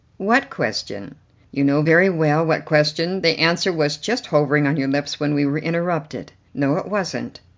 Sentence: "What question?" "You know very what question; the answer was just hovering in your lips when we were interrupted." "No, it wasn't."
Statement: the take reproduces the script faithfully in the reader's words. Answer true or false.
false